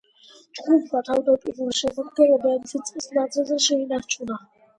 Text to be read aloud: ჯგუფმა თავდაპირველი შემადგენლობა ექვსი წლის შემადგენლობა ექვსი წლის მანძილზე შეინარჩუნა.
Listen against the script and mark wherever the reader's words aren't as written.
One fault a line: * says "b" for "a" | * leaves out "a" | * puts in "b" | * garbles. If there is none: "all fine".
* leaves out "შემადგენლობა ექვსი წლის"